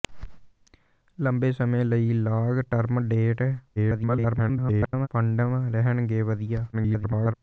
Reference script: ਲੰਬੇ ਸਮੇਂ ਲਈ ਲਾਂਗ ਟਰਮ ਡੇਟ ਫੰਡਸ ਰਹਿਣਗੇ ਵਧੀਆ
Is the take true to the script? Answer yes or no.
no